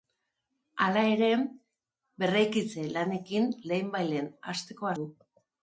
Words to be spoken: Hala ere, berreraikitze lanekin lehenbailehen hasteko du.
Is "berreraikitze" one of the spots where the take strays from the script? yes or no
no